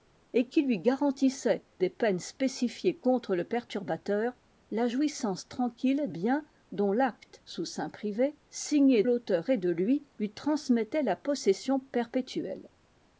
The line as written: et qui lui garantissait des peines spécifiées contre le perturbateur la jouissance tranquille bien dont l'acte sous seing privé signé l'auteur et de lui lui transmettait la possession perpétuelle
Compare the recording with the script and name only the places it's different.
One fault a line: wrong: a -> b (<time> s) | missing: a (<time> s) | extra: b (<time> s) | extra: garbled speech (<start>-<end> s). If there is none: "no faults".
no faults